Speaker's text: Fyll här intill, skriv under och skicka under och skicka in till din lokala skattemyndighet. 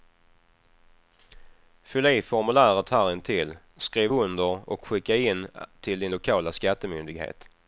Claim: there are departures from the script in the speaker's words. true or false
true